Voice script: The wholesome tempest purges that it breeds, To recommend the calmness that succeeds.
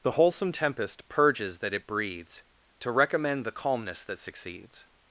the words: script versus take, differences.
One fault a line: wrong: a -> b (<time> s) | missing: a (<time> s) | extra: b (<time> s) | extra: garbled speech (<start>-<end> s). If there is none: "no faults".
no faults